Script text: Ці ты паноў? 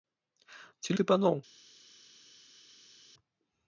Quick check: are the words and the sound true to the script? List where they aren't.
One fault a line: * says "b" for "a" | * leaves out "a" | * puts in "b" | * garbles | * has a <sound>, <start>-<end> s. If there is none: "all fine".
all fine